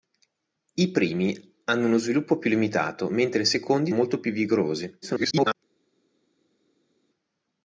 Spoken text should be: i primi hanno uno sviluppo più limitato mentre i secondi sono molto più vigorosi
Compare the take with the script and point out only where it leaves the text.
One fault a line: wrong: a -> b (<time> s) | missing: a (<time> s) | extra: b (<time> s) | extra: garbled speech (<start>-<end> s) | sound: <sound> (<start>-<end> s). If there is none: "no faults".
missing: sono (3.9 s)
extra: garbled speech (5.0-5.5 s)